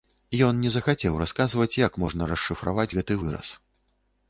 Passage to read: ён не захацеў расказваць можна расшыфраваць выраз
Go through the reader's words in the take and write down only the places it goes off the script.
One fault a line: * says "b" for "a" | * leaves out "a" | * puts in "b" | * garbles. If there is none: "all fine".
* puts in "як"
* puts in "гэты"